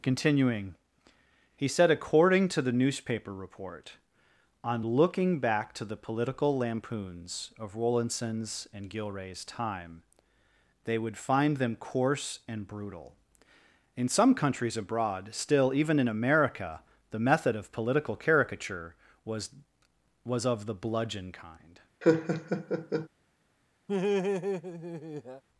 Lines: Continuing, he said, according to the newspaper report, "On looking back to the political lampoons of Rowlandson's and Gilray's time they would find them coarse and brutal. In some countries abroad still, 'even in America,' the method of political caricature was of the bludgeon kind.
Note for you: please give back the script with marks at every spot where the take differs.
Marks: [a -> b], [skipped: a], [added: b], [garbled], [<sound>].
Continuing, he said, according to the newspaper report, "On looking back to the political lampoons of Rowlandson's and Gilray's time they would find them coarse and brutal. In some countries abroad still, 'even in America,' the method of political caricature was [added: was] of the bludgeon kind. [laugh] [laugh]